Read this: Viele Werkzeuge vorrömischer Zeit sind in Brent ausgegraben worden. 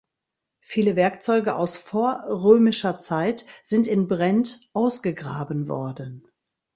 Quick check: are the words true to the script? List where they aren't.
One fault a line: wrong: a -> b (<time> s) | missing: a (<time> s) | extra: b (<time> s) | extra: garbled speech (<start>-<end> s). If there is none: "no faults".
extra: aus (1.6 s)